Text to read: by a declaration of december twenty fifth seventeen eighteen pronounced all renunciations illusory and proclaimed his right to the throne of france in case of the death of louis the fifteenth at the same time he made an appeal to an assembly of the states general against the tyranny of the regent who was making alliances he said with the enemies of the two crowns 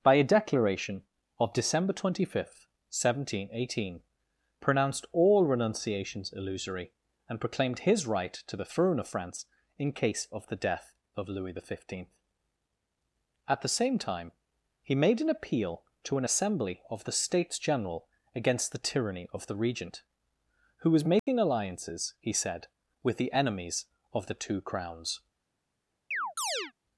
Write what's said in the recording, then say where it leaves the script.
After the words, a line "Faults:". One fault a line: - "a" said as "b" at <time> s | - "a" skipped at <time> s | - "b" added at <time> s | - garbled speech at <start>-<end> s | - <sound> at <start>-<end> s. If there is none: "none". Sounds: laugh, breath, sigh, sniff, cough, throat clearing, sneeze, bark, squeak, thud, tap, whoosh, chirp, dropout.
by a declaration of december twenty fifth seventeen eighteen pronounced all renunciations illusory and proclaimed his right to the throne of france in case of the death of louis the fifteenth at the same time he made an appeal to an assembly of the states general against the tyranny of the regent who was making alliances he said with the enemies of the two crowns
Faults:
- dropout at 21.2-21.3 s
- chirp at 26.1-26.7 s